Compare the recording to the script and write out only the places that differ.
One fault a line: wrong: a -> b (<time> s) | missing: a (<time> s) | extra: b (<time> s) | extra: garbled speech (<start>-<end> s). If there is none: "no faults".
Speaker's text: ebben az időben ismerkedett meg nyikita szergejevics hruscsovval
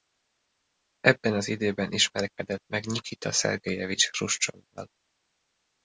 no faults